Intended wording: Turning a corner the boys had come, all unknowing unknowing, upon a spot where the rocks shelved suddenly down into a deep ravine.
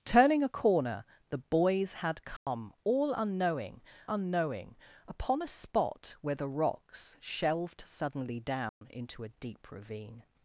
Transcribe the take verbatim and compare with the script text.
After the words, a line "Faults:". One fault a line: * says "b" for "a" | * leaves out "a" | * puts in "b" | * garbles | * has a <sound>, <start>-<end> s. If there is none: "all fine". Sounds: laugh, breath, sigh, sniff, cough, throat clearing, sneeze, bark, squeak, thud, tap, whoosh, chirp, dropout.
Turning a corner the boys had come, all unknowing unknowing, upon a spot where the rocks shelved suddenly down into a deep ravine.
Faults:
* has a dropout, 2.4-2.5 s
* has a dropout, 8.7-8.8 s